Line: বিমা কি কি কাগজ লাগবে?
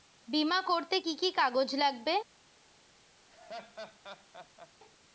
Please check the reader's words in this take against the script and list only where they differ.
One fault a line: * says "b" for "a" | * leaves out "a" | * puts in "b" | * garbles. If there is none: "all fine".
* puts in "করতে"